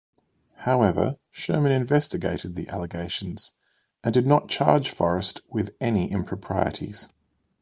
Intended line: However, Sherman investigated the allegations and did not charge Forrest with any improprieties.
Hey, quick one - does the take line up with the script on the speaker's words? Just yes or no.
yes